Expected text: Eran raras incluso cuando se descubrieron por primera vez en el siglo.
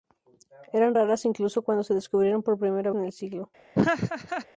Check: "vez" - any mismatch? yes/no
yes